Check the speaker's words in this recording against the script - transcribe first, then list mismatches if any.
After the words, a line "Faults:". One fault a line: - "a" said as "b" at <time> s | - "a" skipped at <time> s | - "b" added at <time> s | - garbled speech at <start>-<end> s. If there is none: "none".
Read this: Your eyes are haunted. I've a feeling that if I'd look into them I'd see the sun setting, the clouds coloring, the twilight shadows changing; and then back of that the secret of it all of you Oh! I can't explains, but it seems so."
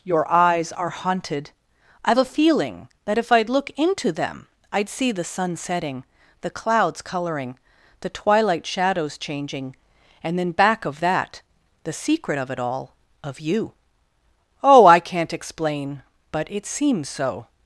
Your eyes are haunted. I've a feeling that if I'd look into them I'd see the sun setting, the clouds coloring, the twilight shadows changing; and then back of that the secret of it all of you Oh! I can't explain, but it seems so."
Faults:
- "explains" said as "explain" at 15.3 s